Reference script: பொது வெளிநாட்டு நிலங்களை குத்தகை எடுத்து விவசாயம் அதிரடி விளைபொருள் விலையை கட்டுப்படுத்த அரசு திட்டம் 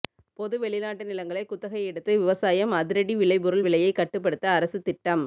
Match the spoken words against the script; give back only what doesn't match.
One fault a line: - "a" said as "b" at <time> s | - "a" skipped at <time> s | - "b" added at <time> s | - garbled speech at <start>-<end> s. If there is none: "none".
none